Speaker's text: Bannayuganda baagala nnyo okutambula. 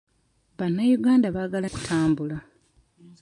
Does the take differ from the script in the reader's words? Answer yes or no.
yes